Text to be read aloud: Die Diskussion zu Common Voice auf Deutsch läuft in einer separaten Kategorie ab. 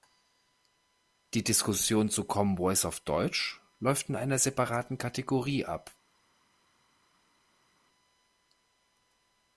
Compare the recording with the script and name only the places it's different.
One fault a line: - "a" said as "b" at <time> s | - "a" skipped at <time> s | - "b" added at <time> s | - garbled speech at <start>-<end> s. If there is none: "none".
none